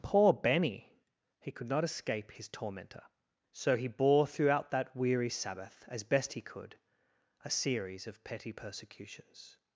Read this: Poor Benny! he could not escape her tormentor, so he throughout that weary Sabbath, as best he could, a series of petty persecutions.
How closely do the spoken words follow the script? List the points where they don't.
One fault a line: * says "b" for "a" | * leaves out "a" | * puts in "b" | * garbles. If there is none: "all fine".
* says "his" for "her"
* puts in "bore"